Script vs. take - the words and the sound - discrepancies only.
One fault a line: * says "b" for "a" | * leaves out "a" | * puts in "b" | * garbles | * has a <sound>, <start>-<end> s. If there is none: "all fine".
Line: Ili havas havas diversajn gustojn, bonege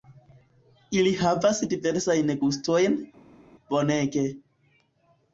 * leaves out "havas"